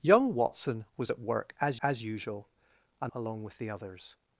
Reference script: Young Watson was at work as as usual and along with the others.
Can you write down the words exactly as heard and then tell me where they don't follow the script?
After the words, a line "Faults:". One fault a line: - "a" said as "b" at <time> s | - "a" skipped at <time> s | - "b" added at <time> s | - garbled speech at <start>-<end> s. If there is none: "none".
Young Watson was at work as as usual and along with the others.
Faults:
none